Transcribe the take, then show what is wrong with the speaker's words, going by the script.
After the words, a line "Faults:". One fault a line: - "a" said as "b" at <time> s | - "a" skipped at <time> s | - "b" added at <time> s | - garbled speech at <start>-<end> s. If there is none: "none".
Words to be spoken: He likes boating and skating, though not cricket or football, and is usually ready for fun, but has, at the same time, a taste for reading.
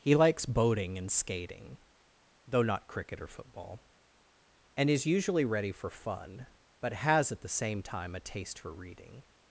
He likes boating and skating, though not cricket or football, and is usually ready for fun, but has, at the same time, a taste for reading.
Faults:
none